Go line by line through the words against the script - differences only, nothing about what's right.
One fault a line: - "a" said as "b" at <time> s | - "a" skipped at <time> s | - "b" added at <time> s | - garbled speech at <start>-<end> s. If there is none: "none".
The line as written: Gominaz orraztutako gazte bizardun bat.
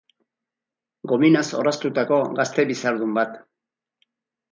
none